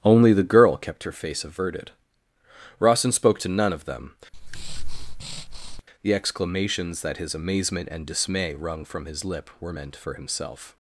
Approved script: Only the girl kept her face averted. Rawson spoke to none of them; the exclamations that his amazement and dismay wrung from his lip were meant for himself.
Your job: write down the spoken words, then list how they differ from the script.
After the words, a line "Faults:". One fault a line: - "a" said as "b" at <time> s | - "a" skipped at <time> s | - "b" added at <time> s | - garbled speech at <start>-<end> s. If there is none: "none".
Only the girl kept her face averted. Rawson spoke to none of them; the exclamations that his amazement and dismay wrung from his lip were meant for himself.
Faults:
none